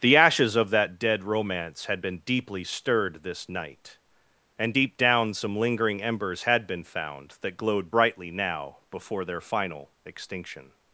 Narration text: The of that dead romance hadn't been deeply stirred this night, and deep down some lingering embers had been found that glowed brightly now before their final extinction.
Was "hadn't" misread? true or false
true